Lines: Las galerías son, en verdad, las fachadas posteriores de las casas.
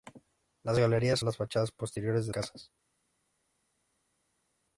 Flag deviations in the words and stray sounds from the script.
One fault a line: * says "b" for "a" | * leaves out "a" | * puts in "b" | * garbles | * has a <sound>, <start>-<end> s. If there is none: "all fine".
* leaves out "son en verdad"
* leaves out "las"